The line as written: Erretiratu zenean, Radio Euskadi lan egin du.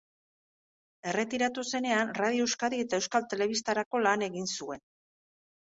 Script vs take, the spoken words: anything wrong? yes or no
yes